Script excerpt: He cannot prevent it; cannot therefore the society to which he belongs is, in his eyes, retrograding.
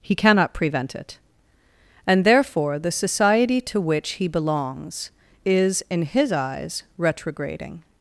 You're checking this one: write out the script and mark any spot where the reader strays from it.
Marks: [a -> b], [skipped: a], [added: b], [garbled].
He cannot prevent it; [cannot -> and] therefore the society to which he belongs is, in his eyes, retrograding.